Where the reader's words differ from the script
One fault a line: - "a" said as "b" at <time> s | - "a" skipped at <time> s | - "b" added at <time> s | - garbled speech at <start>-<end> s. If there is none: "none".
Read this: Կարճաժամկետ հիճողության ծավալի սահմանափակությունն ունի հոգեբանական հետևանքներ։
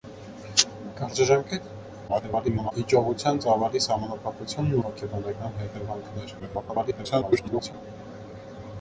- garbled speech at 2.1-2.7 s
- "ունի" skipped at 4.8 s
- garbled speech at 6.4-7.7 s